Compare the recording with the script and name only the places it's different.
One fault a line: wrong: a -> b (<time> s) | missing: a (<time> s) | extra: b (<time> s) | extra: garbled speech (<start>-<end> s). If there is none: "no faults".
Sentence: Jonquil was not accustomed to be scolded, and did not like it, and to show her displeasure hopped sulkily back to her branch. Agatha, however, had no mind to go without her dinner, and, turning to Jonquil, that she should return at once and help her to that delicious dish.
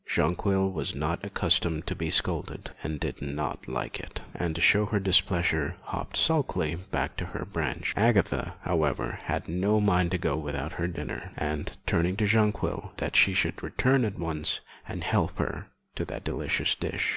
no faults